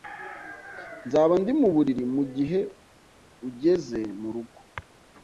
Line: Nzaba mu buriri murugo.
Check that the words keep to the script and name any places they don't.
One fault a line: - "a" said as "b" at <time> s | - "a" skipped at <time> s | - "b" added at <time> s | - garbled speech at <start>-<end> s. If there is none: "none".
- "ndi" added at 1.4 s
- "mugihe ugeze" added at 2.1 s